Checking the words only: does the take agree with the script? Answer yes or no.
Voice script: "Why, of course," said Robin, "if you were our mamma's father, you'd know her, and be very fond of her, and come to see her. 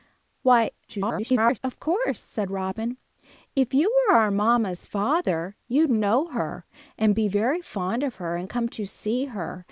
no